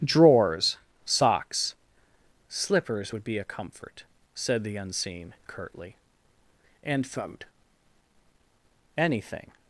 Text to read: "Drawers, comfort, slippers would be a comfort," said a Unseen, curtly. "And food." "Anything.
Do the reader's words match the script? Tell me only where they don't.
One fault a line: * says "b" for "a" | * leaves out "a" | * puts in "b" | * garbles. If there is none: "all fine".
* says "socks" for "comfort"
* says "the" for "a"